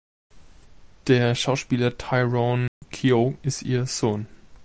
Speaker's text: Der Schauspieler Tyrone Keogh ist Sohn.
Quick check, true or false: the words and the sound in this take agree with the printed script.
false